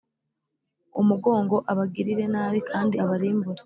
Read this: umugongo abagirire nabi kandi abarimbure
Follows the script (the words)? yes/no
yes